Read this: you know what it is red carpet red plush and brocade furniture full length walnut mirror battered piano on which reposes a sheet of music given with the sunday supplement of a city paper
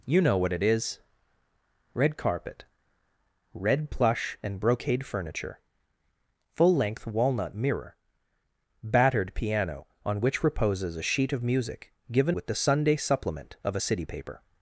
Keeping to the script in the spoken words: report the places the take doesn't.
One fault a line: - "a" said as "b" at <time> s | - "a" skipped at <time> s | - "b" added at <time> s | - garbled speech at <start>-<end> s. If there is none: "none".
none